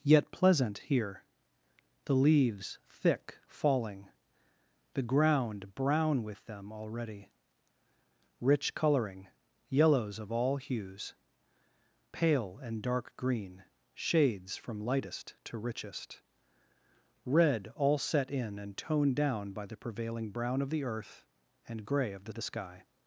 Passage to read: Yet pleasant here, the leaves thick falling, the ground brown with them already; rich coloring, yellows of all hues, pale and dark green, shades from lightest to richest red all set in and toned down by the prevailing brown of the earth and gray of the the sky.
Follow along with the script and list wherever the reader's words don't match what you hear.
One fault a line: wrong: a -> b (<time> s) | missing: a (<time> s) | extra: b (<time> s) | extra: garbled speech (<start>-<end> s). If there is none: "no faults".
no faults